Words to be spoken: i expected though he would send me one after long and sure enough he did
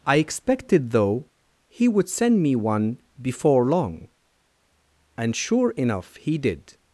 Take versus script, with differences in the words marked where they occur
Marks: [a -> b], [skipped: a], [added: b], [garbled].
i expected though he would send me one [after -> before] long and sure enough he did